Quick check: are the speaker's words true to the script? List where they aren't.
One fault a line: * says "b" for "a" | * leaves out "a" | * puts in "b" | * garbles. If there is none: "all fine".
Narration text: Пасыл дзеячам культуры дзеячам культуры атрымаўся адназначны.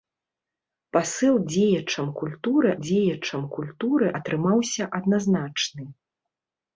all fine